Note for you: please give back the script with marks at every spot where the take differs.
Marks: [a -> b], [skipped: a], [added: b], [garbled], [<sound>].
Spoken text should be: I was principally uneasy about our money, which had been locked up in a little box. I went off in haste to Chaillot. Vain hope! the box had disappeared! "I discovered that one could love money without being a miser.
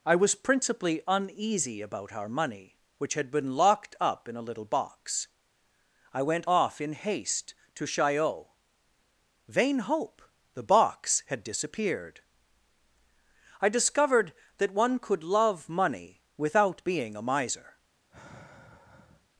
I was principally uneasy about our money, which had been locked up in a little box. I went off in haste to Chaillot. Vain hope! the box had disappeared! "I discovered that one could love money without being a miser. [sigh]